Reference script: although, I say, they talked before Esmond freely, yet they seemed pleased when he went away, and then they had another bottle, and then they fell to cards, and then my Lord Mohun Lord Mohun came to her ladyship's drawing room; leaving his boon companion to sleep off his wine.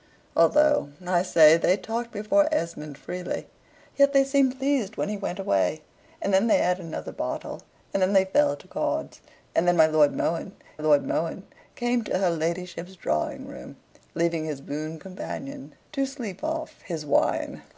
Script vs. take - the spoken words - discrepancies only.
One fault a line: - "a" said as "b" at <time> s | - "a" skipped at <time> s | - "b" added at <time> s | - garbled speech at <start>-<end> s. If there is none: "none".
none